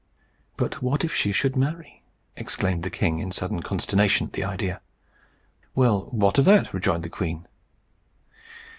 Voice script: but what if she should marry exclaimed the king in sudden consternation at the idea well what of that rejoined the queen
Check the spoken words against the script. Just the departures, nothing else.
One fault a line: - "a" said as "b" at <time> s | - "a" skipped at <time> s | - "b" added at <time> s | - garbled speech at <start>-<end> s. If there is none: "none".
none